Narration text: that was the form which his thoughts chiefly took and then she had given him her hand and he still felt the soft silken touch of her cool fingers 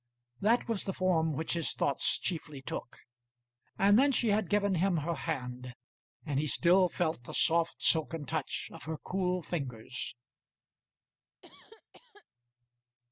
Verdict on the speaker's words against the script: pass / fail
pass